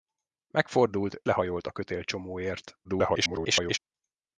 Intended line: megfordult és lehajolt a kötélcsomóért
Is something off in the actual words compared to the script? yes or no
yes